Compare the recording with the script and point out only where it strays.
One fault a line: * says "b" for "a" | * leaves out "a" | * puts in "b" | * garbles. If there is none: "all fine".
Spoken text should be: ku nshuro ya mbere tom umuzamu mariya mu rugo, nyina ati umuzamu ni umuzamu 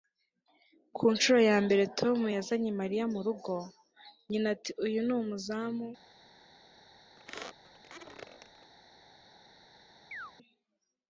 * says "yazanye" for "umuzamu"
* says "uyu" for "umuzamu"